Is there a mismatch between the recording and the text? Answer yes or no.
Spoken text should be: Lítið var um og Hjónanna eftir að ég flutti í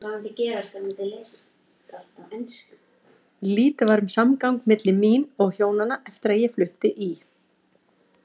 yes